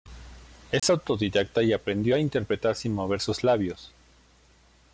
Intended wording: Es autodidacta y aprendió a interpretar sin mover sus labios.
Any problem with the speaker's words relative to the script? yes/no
no